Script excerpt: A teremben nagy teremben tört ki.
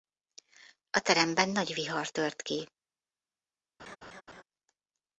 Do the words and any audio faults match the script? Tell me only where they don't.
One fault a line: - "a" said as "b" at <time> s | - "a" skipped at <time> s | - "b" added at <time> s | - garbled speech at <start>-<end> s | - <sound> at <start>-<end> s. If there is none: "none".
- "teremben" said as "vihar" at 1.7 s
- laugh at 3.8-4.4 s